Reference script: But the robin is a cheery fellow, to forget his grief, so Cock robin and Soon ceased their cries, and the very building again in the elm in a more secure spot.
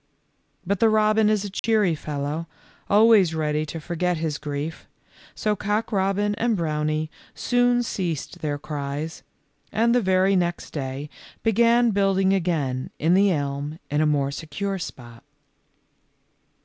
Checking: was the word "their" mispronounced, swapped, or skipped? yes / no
no